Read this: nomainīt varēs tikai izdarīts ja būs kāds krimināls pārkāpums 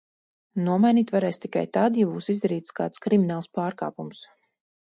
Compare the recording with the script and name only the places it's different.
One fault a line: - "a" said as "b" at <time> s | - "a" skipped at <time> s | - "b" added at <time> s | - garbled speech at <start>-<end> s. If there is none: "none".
- "izdarīts" said as "tad" at 1.8 s
- "izdarīts" added at 2.4 s